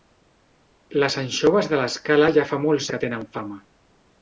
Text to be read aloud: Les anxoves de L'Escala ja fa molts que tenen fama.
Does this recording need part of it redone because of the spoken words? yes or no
no